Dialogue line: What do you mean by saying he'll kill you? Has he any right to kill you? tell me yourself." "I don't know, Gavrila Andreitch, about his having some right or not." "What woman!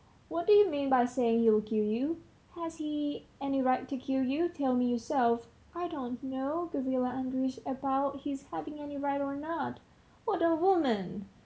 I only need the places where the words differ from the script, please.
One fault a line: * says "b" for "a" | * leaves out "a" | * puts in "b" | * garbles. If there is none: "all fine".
* says "any" for "some"
* puts in "a"